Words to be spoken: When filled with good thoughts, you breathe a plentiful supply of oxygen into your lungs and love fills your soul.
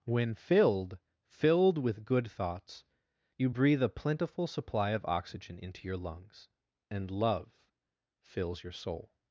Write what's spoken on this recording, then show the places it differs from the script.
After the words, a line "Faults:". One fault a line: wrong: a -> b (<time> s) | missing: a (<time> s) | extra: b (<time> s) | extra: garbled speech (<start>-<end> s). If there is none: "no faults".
When filled filled with good thoughts, you breathe a plentiful supply of oxygen into your lungs and love fills your soul.
Faults:
extra: filled (1.2 s)